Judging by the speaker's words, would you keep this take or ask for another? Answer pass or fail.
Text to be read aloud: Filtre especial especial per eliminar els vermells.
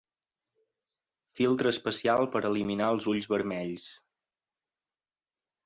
fail